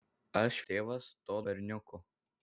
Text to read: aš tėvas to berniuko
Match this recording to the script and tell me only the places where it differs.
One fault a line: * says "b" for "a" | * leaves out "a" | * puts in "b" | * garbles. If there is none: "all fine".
all fine